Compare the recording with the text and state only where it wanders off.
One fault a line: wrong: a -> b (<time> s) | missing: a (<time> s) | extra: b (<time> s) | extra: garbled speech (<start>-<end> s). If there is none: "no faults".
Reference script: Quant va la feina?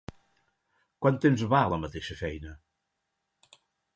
extra: temps (1.2 s)
extra: mateixa (1.8 s)